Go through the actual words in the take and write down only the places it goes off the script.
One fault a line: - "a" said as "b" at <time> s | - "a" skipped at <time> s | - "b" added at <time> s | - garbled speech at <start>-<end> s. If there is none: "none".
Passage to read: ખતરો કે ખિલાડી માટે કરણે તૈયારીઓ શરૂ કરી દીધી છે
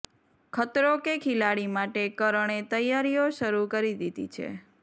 none